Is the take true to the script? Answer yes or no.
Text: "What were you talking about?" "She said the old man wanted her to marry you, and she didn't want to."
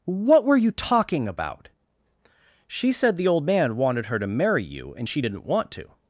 yes